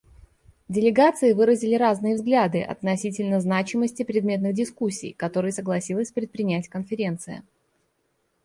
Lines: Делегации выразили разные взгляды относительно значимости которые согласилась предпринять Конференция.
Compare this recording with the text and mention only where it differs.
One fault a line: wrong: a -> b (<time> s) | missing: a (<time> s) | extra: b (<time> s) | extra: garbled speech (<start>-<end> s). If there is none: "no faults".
extra: предметных дискуссий (4.0 s)